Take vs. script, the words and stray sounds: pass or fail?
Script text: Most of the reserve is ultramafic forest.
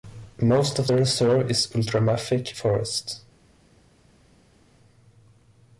pass